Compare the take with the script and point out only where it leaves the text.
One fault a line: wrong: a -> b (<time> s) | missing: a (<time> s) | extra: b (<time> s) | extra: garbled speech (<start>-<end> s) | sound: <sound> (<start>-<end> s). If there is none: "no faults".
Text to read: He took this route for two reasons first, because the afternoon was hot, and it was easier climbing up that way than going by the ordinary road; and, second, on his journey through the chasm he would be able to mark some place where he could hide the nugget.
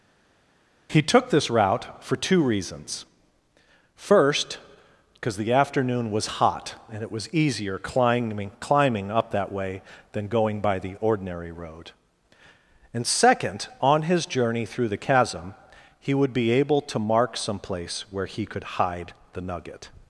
extra: climbing (8.6 s)